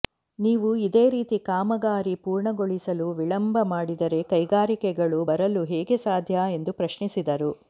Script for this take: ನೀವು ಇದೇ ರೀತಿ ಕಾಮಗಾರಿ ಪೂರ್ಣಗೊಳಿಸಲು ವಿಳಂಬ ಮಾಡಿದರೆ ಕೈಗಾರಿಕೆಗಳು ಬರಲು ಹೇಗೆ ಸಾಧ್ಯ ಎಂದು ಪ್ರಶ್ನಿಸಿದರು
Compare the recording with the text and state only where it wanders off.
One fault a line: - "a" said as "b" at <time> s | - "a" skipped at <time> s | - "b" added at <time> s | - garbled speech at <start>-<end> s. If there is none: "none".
none